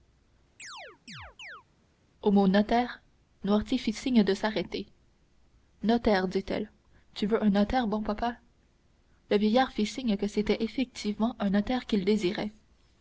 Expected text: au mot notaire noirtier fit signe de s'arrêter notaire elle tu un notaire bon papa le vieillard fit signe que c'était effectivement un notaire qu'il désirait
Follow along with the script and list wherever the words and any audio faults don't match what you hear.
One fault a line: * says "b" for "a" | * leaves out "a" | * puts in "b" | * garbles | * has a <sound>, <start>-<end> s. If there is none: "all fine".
* has a chirp, 0.6-1.6 s
* puts in "dit"
* puts in "veux"